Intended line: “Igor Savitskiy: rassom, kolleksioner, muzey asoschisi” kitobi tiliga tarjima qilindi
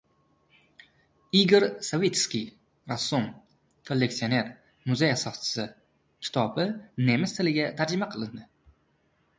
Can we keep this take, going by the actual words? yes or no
no